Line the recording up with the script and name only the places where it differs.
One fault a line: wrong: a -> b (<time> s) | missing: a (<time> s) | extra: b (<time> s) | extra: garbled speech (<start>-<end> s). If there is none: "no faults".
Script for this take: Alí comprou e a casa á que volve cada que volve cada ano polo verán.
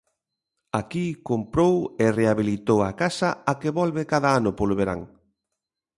wrong: Alí -> Aquí (0.8 s)
extra: rehabilitou (2.2 s)
missing: que volve cada (4.3 s)